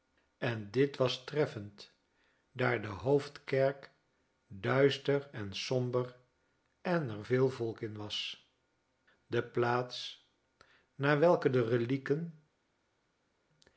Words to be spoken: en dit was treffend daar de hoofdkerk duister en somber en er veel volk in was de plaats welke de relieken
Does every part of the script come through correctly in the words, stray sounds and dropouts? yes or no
no